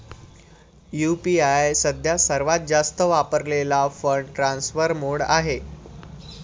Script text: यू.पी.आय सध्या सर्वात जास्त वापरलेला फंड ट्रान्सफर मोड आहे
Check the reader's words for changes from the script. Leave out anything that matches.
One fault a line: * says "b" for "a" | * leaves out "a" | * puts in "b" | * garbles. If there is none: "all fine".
all fine